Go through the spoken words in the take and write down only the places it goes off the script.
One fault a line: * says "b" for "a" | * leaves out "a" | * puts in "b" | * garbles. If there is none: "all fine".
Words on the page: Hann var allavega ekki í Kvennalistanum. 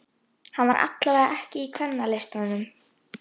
all fine